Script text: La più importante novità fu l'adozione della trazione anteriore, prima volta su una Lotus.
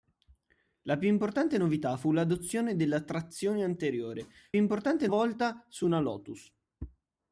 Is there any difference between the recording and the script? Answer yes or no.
yes